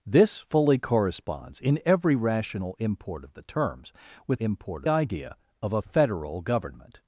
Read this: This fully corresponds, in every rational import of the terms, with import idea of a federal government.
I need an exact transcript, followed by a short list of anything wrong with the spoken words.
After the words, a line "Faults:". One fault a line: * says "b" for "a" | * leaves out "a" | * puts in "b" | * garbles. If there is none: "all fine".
This fully corresponds, in every rational import of the terms, with import idea of a federal government.
Faults:
all fine